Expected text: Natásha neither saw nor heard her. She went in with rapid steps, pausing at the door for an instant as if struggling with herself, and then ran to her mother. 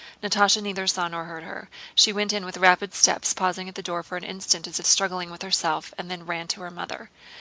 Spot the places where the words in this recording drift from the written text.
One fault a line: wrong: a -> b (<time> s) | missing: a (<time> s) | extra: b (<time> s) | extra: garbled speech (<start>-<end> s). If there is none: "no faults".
no faults